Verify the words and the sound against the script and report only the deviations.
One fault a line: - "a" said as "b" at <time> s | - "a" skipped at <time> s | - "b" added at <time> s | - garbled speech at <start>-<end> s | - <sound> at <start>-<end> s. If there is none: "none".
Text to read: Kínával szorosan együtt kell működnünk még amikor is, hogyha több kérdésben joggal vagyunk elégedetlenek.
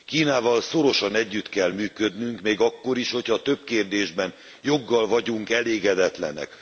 - "amikor" said as "akkor" at 2.6 s